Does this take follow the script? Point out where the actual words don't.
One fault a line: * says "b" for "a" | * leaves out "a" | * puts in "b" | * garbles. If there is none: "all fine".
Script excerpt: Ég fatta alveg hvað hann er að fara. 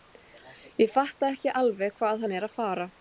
* puts in "ekki"